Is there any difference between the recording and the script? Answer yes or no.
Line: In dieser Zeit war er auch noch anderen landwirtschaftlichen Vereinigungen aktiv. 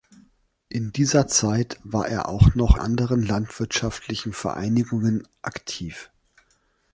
no